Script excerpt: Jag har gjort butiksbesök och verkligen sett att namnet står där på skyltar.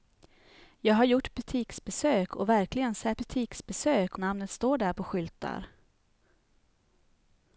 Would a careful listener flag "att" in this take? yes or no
yes